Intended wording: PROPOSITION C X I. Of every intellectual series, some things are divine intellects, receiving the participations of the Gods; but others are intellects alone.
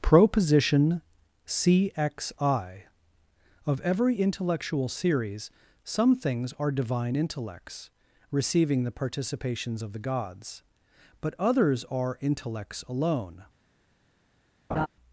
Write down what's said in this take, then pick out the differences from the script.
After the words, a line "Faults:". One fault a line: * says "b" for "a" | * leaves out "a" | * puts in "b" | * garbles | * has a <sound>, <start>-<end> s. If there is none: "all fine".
PROPOSITION C X I. Of every intellectual series, some things are divine intellects, receiving the participations of the Gods; but others are intellects alone.
Faults:
* has a laugh, 14.7-14.9 s